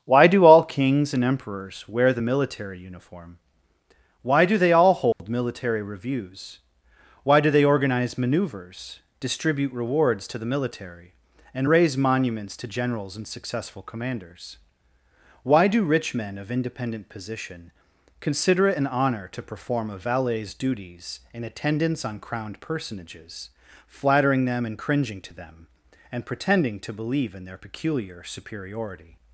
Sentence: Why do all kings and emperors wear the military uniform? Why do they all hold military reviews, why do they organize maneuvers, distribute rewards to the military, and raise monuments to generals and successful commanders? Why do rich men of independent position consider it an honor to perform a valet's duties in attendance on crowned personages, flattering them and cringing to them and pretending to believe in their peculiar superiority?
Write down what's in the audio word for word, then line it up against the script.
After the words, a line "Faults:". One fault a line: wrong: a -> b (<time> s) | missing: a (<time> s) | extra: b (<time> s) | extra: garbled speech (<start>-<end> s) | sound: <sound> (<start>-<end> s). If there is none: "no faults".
Why do all kings and emperors wear the military uniform? Why do they all hold military reviews, why do they organize maneuvers, distribute rewards to the military, and raise monuments to generals and successful commanders? Why do rich men of independent position consider it an honor to perform a valet's duties in attendance on crowned personages, flattering them and cringing to them and pretending to believe in their peculiar superiority?
Faults:
sound: dropout (5.1-5.2 s)